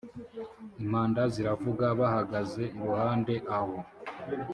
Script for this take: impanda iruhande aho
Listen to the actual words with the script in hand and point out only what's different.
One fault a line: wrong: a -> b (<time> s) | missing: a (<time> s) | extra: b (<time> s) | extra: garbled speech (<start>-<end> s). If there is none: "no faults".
extra: ziravuga bahagaze (1.3 s)